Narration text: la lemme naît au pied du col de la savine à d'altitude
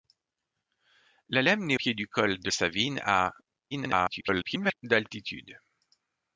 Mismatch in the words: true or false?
true